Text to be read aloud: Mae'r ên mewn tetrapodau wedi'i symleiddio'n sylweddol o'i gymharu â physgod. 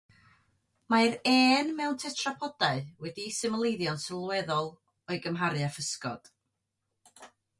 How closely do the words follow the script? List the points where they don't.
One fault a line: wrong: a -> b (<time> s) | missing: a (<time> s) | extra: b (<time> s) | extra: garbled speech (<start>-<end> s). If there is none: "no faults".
no faults